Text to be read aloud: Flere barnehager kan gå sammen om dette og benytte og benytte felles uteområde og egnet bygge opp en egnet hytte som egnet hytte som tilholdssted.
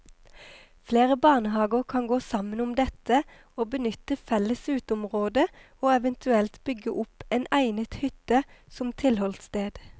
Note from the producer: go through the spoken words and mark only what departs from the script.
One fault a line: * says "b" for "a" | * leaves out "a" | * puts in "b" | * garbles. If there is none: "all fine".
* leaves out "og benytte"
* says "eventuelt" for "egnet"
* leaves out "egnet hytte som"